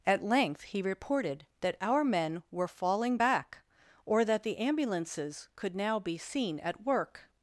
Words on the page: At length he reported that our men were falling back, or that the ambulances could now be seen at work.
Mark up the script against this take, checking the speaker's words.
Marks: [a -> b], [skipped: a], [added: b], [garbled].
At length he reported that our men were falling back, or that the ambulances could now be seen at work.